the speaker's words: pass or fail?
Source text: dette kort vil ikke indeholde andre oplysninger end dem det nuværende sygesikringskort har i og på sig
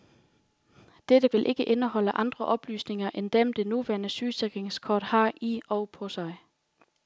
fail